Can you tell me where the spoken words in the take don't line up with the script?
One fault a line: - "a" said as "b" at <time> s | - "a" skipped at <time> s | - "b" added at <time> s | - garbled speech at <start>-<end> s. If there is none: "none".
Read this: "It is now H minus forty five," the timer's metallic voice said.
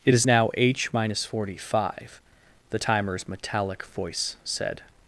none